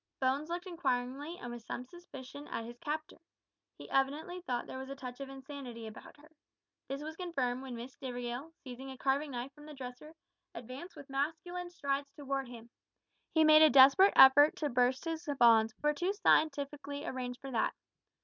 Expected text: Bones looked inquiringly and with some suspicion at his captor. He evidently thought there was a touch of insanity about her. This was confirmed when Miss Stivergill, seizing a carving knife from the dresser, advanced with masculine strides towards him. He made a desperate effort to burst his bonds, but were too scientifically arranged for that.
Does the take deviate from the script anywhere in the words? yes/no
no